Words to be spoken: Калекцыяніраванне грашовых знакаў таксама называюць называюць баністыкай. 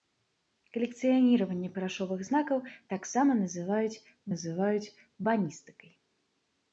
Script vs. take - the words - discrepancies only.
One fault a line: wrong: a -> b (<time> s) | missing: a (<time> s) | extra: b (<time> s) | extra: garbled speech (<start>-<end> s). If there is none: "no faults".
no faults